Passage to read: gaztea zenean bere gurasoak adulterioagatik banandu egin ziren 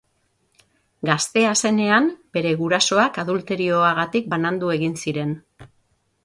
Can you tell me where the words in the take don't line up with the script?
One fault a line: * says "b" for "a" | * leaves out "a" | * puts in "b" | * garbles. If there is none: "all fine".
all fine